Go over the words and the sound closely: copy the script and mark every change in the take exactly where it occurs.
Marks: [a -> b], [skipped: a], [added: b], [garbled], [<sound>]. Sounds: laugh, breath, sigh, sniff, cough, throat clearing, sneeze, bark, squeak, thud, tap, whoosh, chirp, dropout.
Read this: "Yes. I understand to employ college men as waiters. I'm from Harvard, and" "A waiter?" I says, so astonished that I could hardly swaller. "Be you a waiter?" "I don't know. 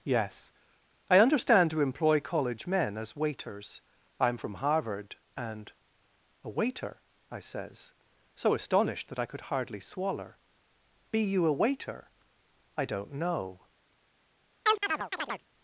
"Yes. I understand to employ college men as waiters. I'm from Harvard, and" "A waiter?" I says, so astonished that I could hardly swaller. "Be you a waiter?" "I don't know. [chirp]